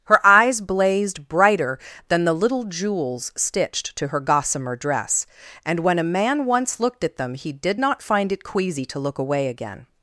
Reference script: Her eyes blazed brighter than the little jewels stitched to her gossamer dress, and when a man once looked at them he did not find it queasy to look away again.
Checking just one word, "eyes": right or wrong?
right